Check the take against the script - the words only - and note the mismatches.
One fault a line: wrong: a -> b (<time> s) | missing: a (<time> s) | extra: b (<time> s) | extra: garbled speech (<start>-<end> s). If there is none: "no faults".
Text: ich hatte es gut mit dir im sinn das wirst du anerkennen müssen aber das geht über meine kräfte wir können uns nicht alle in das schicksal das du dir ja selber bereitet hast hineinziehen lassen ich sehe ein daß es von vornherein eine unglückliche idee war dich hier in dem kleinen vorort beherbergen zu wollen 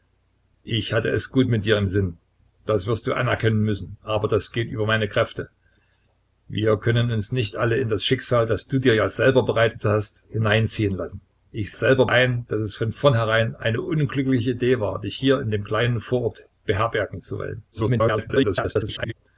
wrong: sehe -> selber (11.7 s)
extra: garbled speech (17.7-19.1 s)